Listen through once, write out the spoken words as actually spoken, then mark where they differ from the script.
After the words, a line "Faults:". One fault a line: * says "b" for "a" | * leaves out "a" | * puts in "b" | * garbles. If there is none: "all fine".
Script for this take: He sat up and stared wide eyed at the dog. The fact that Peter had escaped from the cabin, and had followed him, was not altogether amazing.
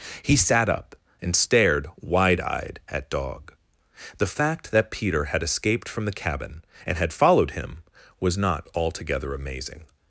He sat up and stared wide eyed at dog. The fact that Peter had escaped from the cabin, and had followed him, was not altogether amazing.
Faults:
* leaves out "the"